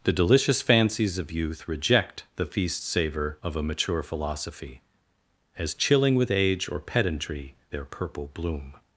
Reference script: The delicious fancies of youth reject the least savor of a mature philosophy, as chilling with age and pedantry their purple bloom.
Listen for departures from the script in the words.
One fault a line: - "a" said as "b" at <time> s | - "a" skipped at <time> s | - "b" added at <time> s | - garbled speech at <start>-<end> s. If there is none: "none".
- "least" said as "feast" at 2.4 s
- "and" said as "or" at 6.7 s